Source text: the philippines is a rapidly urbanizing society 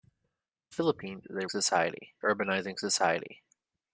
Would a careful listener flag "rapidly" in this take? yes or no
yes